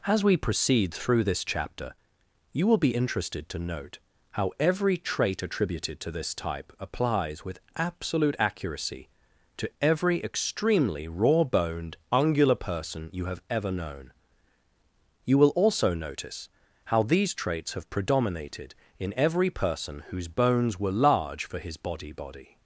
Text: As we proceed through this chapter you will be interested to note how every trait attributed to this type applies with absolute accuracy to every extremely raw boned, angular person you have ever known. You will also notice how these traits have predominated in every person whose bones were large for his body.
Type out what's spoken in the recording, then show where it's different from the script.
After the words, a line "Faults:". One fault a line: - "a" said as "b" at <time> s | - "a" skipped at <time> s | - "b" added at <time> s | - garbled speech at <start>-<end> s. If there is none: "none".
As we proceed through this chapter you will be interested to note how every trait attributed to this type applies with absolute accuracy to every extremely raw boned, angular person you have ever known. You will also notice how these traits have predominated in every person whose bones were large for his body body.
Faults:
- "body" added at 22.1 s